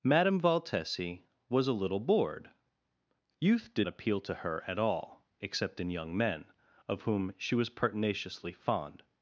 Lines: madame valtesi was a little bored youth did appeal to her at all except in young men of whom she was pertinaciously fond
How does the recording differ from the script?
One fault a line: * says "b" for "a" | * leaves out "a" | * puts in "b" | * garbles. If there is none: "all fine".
all fine